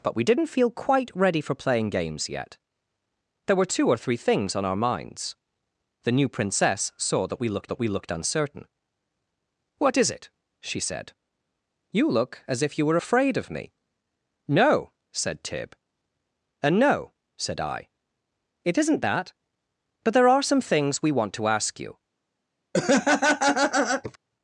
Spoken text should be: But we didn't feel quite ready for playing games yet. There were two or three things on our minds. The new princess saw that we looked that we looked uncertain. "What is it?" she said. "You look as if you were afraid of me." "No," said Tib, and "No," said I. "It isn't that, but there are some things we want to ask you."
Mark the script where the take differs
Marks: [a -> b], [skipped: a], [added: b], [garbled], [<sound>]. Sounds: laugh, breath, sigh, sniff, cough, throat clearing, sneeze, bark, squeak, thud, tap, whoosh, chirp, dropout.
But we didn't feel quite ready for playing games yet. There were two or three things on our minds. The new princess saw that we looked that we looked uncertain. "What is it?" she said. "You look as if you were afraid of me." "No," said Tib, and "No," said I. "It isn't that, but there are some things we want to ask you." [laugh]